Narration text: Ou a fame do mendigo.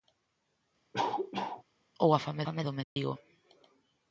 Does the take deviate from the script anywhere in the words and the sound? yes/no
yes